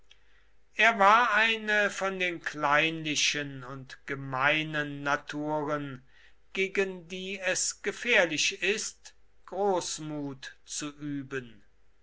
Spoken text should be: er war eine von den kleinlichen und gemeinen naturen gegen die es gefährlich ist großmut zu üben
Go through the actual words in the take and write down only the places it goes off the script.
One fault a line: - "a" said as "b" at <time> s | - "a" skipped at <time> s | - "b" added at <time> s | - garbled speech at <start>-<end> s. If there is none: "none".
none